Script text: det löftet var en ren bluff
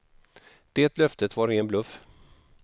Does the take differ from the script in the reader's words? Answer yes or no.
yes